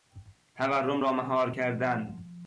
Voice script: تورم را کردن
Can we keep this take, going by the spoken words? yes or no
no